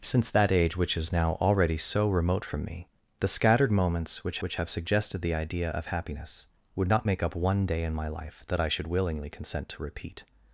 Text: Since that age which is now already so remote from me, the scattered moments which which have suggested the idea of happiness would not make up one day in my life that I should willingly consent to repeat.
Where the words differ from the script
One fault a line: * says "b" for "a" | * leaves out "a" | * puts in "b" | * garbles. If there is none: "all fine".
all fine